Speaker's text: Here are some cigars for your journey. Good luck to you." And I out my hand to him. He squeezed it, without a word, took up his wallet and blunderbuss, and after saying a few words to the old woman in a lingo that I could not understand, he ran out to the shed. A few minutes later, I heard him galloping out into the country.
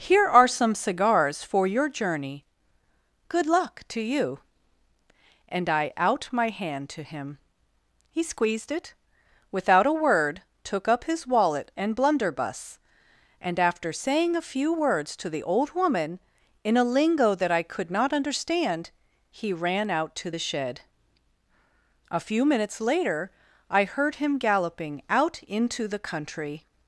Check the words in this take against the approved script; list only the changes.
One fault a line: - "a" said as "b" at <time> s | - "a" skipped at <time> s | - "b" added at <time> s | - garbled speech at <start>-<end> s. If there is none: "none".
none